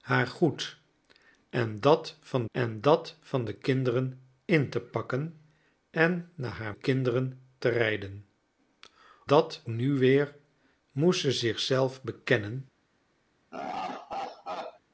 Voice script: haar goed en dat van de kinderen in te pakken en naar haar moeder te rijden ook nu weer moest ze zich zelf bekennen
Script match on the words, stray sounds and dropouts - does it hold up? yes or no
no